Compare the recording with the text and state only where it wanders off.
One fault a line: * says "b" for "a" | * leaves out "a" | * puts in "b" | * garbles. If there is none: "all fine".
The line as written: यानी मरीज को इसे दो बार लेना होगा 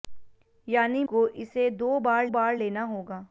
* leaves out "मरीज"
* puts in "बार"